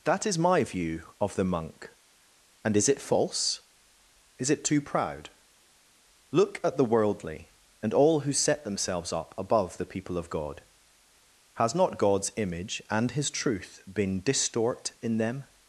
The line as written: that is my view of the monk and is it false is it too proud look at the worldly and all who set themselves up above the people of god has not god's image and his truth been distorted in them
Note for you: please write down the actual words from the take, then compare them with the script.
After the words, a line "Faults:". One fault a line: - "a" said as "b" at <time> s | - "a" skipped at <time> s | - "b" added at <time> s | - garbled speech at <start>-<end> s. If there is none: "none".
that is my view of the monk and is it false is it too proud look at the worldly and all who set themselves up above the people of god has not god's image and his truth been distort in them
Faults:
- "distorted" said as "distort" at 14.2 s